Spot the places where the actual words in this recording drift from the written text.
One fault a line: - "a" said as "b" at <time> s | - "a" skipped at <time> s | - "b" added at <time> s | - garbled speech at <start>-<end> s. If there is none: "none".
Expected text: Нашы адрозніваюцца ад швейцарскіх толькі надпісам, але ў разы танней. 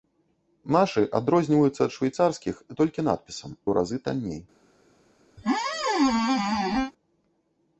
- "але" skipped at 3.5 s